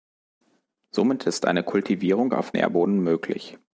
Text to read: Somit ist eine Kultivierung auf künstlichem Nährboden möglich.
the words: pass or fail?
fail